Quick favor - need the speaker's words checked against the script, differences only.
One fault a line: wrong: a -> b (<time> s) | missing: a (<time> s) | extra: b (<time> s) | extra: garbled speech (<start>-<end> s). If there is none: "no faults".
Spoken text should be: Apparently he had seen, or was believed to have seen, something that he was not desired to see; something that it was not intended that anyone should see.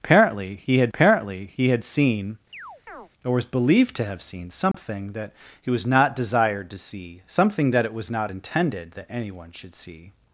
extra: apparently he had (0.9 s)